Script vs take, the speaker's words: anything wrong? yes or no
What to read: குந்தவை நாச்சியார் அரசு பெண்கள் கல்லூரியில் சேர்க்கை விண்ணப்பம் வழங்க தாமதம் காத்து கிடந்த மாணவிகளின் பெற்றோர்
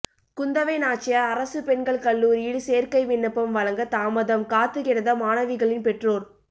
no